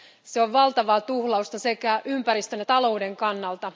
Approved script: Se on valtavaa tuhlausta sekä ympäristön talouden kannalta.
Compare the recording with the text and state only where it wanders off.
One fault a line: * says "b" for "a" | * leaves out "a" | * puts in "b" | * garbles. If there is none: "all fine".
all fine